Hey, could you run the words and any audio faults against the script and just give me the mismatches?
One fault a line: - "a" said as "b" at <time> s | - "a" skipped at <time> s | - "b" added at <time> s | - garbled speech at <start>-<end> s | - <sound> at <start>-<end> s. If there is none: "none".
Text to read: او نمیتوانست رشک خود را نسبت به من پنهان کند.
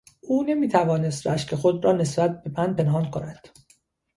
none